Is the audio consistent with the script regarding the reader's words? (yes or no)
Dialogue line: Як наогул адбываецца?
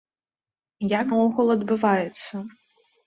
yes